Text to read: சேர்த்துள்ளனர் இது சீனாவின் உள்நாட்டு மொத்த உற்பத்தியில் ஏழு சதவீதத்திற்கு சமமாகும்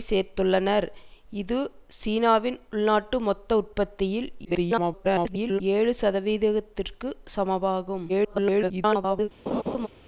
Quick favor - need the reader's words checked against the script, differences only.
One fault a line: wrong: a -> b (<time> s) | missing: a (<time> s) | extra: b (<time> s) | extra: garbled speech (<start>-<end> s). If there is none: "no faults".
extra: garbled speech (4.4-5.6 s)
extra: garbled speech (8.1-9.3 s)